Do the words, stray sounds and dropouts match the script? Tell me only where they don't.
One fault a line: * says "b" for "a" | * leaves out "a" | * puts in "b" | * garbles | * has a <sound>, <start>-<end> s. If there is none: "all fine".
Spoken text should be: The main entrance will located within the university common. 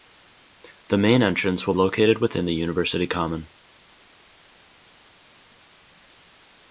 all fine